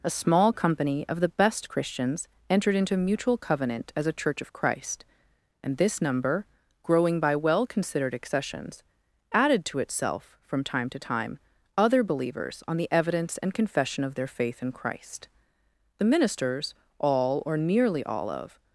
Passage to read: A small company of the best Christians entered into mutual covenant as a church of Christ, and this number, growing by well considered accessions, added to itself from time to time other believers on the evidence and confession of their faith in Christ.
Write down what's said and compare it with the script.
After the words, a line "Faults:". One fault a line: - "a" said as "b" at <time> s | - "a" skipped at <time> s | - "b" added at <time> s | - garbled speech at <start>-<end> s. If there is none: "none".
A small company of the best Christians entered into mutual covenant as a church of Christ, and this number, growing by well considered accessions, added to itself from time to time other believers on the evidence and confession of their faith in Christ. The ministers, all or nearly all of
Faults:
- "The ministers all or nearly all of" added at 16.0 s